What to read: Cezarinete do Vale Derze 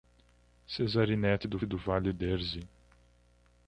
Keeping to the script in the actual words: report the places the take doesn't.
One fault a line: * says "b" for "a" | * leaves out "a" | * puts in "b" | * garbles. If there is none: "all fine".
* puts in "do"